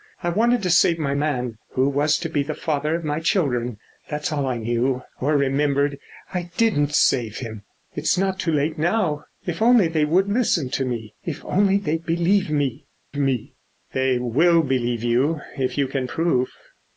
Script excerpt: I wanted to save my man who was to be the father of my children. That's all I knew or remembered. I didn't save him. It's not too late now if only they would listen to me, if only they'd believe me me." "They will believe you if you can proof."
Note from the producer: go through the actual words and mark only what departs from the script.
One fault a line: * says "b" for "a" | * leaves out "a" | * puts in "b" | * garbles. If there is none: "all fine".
all fine